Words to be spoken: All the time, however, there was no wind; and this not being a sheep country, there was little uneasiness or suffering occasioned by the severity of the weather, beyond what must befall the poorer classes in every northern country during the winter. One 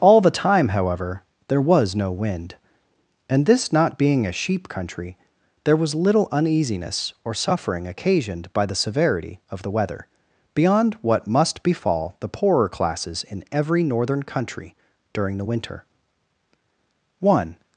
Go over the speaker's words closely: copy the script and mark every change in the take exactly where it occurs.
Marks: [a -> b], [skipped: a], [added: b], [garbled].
All the time, however, there was no wind; and this not being a sheep country, there was little uneasiness or suffering occasioned by the severity of the weather, beyond what must befall the poorer classes in every northern country during the winter. One